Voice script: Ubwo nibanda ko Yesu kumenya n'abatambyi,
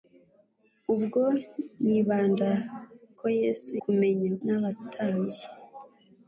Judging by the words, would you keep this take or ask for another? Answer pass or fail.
pass